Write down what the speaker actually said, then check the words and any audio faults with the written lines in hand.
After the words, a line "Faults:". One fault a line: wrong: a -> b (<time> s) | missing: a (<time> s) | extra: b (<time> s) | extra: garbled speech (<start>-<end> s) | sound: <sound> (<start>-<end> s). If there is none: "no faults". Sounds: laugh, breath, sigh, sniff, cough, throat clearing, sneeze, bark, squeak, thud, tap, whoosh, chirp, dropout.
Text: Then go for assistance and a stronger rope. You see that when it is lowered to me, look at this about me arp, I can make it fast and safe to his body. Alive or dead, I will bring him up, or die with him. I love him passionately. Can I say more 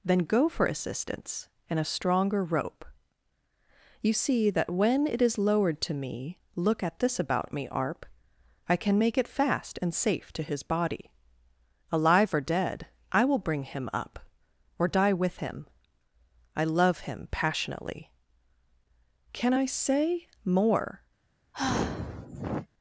Then go for assistance and a stronger rope. You see that when it is lowered to me, look at this about me arp, I can make it fast and safe to his body. Alive or dead, I will bring him up, or die with him. I love him passionately. Can I say more
Faults:
sound: sigh (21.5-22.7 s)